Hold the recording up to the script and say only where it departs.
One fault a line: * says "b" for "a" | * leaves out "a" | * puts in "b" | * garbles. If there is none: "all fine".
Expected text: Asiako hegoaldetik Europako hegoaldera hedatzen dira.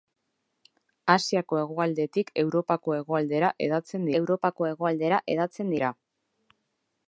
* puts in "Europako hegoaldera hedatzen"